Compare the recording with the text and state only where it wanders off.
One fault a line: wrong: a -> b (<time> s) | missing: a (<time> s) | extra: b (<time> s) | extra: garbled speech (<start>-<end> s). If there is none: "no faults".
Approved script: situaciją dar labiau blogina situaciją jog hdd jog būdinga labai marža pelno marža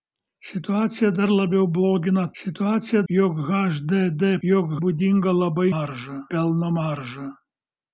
no faults